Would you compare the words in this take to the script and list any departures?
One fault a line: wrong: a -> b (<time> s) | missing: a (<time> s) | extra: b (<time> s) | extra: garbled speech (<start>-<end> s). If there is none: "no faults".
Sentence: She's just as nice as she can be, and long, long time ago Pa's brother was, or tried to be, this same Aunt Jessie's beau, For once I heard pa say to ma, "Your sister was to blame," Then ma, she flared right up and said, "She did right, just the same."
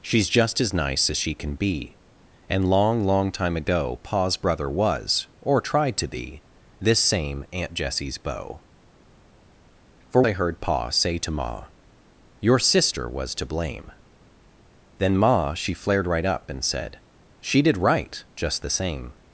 missing: once (10.2 s)